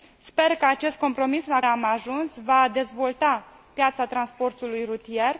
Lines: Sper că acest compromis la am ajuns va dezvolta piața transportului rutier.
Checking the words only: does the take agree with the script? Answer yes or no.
yes